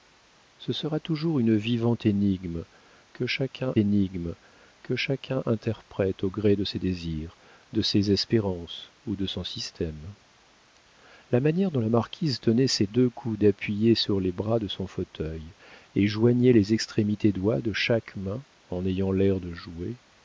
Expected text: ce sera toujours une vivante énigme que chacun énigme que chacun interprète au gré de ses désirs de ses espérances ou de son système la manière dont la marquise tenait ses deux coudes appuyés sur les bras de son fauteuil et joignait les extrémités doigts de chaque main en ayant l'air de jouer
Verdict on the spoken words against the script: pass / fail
pass